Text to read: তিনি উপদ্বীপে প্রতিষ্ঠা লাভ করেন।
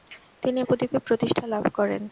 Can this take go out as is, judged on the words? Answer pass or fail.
pass